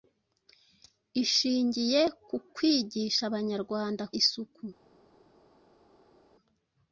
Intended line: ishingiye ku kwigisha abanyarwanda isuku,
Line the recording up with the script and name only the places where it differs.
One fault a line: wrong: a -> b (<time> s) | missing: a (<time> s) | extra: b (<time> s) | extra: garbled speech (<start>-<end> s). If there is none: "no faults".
no faults